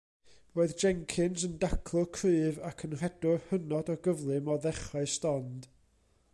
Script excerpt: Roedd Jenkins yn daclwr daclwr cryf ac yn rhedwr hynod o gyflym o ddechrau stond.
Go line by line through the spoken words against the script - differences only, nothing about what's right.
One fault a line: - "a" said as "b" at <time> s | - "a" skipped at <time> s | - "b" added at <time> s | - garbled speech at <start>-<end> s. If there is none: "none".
- "daclwr" skipped at 2.1 s